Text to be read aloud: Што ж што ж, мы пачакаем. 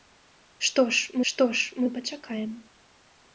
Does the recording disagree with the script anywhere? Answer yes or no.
no